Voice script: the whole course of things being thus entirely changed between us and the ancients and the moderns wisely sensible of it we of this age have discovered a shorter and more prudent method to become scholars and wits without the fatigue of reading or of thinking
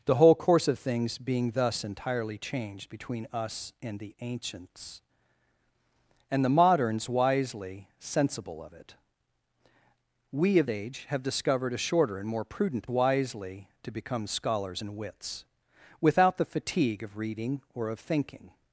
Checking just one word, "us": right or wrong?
right